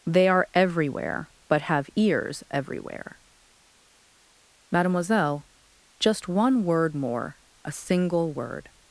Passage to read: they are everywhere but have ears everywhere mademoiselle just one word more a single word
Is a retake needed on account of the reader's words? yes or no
no